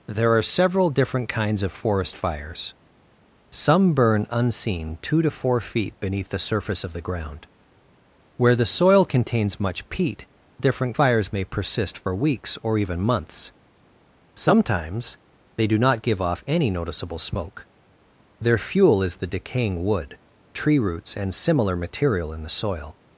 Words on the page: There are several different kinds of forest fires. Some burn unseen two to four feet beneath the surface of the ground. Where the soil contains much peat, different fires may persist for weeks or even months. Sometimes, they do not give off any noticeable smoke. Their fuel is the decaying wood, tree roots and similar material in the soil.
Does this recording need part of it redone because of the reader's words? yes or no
no